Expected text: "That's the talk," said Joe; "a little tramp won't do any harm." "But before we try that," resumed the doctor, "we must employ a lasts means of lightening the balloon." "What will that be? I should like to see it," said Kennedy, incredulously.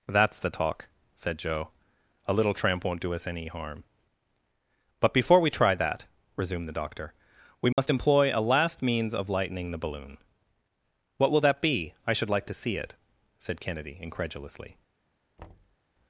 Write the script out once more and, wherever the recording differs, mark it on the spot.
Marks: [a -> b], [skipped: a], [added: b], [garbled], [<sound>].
"That's the talk," said Joe; "a little tramp won't do [added: us] any harm." "But before we try that," resumed the doctor, "we must [dropout] employ a [lasts -> last] means of lightening the balloon." "What will that be? I should like to see it," said Kennedy, incredulously. [thud]